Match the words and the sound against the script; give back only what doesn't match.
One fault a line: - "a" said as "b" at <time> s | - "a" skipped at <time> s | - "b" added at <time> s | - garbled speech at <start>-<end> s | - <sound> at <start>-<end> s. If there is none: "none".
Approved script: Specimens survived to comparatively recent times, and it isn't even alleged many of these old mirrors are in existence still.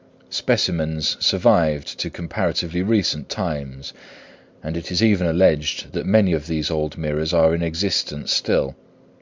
- "isn't" said as "is" at 4.9 s
- "that" added at 5.9 s